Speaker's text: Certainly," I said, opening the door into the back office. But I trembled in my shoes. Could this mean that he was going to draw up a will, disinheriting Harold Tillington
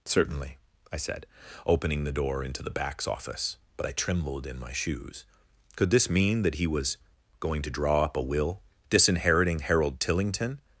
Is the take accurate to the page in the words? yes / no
no